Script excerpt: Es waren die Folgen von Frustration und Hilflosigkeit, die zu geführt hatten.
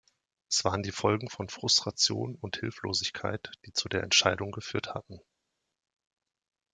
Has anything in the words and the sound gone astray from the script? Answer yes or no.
yes